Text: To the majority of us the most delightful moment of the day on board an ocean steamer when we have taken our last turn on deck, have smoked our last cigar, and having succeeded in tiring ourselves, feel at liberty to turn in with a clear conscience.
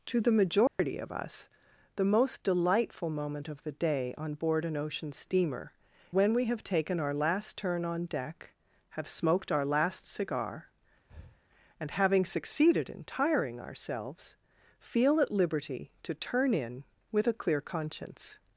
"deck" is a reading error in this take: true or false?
false